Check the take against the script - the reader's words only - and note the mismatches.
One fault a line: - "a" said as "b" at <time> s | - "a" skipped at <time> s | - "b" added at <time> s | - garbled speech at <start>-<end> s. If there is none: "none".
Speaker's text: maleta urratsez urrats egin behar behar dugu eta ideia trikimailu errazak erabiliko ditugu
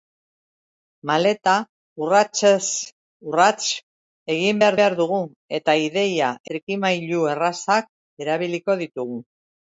none